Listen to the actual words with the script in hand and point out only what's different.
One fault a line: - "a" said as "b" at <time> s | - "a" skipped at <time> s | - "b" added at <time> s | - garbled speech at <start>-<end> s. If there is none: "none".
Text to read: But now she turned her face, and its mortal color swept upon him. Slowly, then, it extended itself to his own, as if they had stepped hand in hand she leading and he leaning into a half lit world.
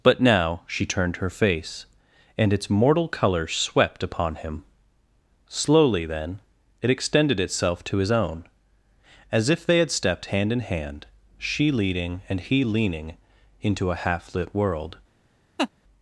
none